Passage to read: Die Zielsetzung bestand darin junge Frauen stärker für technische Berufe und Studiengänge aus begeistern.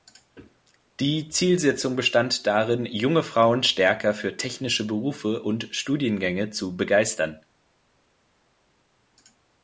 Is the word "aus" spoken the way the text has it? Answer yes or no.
no